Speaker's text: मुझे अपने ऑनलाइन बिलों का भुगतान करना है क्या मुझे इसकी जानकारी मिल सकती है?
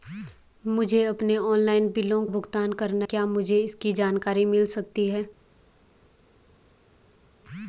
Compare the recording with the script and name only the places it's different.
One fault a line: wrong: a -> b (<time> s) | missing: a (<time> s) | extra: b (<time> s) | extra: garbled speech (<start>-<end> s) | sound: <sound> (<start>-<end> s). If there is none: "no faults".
missing: का (2.2 s)
missing: है (3.1 s)